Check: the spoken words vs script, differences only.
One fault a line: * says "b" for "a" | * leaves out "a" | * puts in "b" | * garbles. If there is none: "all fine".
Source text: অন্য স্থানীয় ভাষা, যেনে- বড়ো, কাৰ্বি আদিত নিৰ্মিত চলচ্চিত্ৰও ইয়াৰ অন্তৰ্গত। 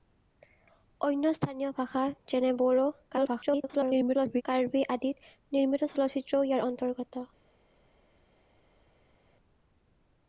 * garbles